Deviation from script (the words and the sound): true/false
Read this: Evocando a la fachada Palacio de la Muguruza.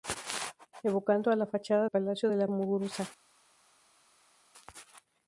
false